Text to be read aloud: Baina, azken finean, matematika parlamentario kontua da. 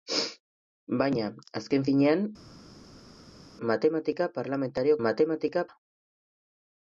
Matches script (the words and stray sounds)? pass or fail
fail